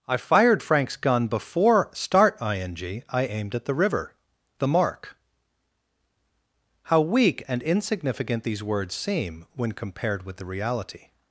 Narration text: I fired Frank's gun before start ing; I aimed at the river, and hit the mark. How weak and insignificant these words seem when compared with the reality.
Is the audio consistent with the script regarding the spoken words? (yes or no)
no